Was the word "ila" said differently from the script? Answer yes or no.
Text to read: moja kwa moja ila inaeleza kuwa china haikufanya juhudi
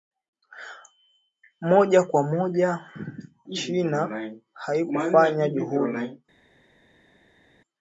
yes